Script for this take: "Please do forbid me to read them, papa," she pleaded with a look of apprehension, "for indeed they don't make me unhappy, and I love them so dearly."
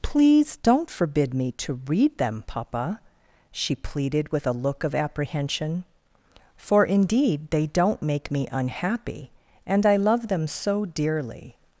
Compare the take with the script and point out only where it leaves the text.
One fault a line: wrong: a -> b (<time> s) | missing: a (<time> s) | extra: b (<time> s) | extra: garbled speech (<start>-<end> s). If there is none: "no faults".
wrong: do -> don't (0.6 s)